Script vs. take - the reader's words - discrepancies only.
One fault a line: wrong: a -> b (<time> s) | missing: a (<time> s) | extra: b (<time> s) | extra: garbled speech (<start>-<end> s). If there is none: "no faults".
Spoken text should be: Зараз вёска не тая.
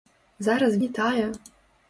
missing: вёска (0.8 s)